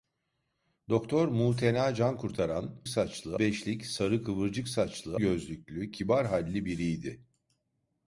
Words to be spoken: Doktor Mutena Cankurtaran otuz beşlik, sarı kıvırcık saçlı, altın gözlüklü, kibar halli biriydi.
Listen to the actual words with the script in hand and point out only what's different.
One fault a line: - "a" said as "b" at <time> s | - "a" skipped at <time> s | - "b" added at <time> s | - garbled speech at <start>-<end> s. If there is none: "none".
- "otuz" said as "saçlı" at 2.9 s
- "altın" skipped at 5.2 s